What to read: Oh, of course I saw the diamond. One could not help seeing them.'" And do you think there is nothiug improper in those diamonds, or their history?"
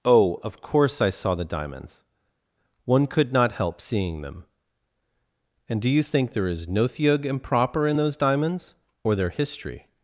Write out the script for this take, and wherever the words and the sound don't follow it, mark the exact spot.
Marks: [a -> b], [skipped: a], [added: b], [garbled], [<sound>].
Oh, of course I saw the [diamond. -> diamonds] One could not help seeing them.'" And do you think there is nothiug improper in those diamonds, or their history?"